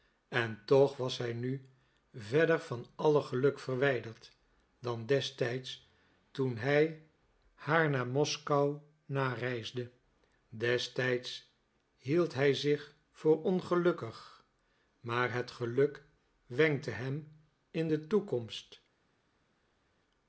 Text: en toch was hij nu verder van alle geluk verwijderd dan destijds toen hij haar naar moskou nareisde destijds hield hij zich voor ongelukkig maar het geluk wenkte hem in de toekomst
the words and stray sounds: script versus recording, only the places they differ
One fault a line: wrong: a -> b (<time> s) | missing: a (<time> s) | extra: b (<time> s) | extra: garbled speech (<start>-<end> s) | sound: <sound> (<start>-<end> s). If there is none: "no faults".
no faults